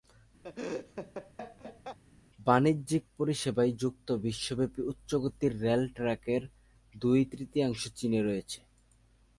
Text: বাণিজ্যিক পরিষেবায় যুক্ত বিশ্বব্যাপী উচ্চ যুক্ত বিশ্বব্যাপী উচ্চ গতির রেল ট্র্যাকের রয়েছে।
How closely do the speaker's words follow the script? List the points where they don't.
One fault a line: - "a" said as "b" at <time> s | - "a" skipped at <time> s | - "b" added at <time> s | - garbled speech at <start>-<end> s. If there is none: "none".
- "যুক্ত বিশ্বব্যাপী উচ্চ গতির রেল ট্র্যাকের" said as "গতির রেল ট্র্যাকের দুই তৃতীয়াংশ চীনে" at 5.2 s